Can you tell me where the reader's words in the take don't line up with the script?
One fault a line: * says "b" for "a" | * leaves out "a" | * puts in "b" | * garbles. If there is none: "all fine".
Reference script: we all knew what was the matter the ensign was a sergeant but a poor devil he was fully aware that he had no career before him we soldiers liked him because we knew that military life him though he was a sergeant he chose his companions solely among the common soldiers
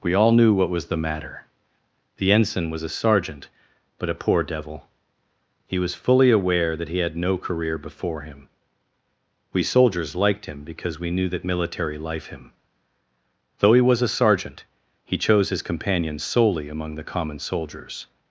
all fine